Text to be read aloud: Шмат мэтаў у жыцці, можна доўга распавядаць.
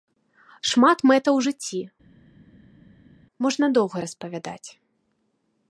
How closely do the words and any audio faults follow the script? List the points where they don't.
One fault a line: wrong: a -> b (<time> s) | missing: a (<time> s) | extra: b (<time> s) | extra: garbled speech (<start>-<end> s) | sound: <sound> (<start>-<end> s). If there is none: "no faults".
no faults